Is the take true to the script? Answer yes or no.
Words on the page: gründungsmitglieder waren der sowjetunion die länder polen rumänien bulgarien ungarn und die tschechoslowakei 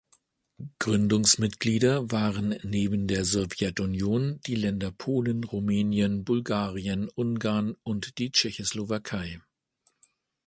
no